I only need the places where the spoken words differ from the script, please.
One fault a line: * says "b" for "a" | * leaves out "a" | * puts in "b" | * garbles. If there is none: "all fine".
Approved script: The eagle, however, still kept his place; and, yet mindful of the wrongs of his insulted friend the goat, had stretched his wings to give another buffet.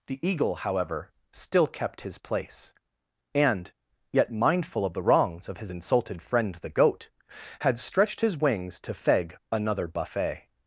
* says "feg" for "give"